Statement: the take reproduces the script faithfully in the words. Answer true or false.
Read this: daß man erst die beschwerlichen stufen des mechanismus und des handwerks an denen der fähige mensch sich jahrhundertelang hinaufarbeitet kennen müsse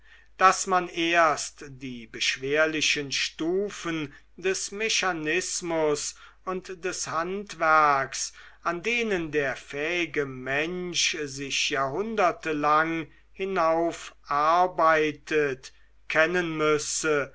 true